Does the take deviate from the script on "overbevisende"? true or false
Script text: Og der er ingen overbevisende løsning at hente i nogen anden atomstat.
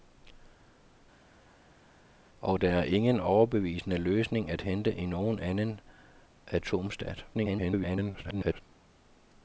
false